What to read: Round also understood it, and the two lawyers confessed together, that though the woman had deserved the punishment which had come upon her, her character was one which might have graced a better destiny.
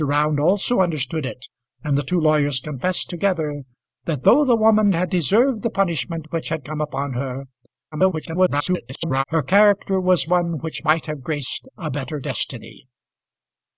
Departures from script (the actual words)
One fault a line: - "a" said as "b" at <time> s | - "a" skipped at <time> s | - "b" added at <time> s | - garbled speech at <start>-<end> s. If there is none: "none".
- garbled speech at 7.9-9.2 s